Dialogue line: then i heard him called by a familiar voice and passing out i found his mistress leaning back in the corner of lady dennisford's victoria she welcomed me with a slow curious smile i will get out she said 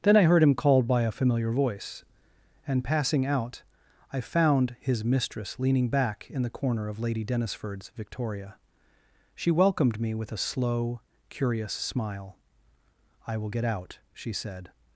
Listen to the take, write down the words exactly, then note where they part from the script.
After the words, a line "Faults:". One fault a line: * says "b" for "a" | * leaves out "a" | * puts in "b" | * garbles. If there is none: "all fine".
then i heard him called by a familiar voice and passing out i found his mistress leaning back in the corner of lady dennisford's victoria she welcomed me with a slow curious smile i will get out she said
Faults:
all fine